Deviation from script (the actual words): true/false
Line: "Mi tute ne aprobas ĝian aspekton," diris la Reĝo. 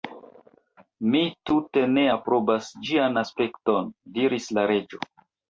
false